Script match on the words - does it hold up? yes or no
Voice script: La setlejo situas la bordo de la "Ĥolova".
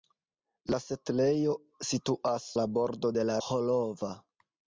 yes